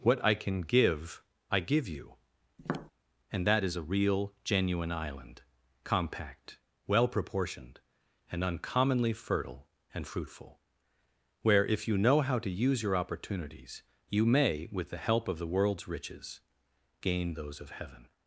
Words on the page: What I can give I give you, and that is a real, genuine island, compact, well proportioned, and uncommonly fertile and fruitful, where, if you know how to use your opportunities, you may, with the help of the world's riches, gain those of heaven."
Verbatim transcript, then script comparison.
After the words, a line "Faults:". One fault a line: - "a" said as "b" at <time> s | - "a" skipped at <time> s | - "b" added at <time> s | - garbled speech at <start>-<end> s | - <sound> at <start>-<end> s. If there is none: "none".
What I can give I give you, and that is a real, genuine island, compact, well proportioned, and uncommonly fertile and fruitful, where, if you know how to use your opportunities, you may, with the help of the world's riches, gain those of heaven."
Faults:
- tap at 2.6-2.9 s